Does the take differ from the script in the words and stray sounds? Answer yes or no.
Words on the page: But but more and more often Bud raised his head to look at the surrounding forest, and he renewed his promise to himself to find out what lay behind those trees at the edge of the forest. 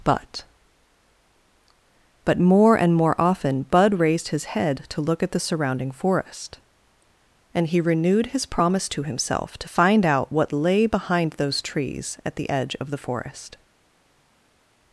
no